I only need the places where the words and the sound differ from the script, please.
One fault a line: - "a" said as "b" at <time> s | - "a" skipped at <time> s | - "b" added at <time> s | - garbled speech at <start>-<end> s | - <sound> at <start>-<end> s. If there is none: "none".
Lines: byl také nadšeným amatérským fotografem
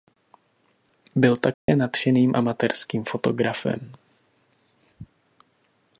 - dropout at 1.5-1.7 s